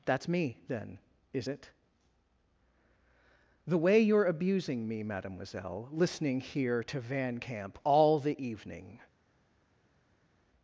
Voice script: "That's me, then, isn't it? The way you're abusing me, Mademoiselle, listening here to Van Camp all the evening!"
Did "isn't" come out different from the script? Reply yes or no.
yes